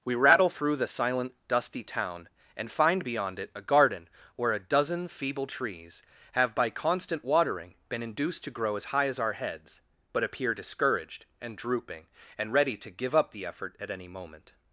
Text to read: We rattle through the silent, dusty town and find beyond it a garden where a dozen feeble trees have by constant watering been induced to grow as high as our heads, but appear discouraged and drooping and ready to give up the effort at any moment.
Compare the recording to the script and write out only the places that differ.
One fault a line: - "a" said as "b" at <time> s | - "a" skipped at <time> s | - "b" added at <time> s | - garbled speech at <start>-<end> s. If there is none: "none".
none